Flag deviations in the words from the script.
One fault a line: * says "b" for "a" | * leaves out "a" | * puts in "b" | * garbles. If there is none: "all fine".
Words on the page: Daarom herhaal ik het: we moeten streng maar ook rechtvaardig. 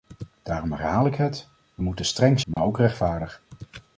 all fine